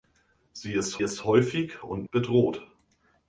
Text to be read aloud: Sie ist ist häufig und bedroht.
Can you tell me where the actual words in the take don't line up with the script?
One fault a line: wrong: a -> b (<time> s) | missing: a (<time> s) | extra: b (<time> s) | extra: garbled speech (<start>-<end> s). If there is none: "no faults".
no faults